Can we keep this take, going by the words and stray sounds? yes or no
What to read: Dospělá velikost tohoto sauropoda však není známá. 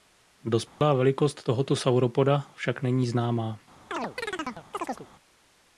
no